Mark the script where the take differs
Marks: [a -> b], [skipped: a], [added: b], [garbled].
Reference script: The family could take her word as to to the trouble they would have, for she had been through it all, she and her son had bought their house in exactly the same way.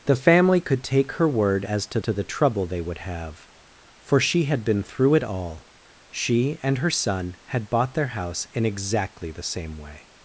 The family could take her word as to to the trouble they would have, for she had been through it all, she and her son had bought their house in exactly the same way.